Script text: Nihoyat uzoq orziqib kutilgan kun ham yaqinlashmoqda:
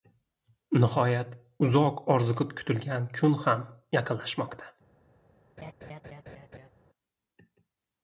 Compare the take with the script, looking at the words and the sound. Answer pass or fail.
fail